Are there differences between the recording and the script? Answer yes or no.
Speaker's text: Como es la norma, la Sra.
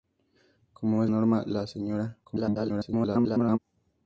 yes